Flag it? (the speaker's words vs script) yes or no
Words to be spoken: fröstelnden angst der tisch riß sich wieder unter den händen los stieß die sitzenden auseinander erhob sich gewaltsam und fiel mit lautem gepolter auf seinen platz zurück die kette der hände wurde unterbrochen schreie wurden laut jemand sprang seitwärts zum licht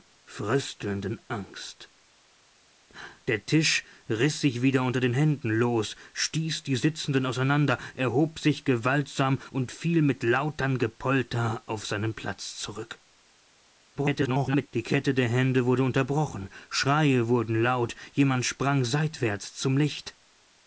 yes